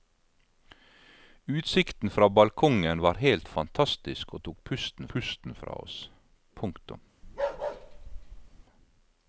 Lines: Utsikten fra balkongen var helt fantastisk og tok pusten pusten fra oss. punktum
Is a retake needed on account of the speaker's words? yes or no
no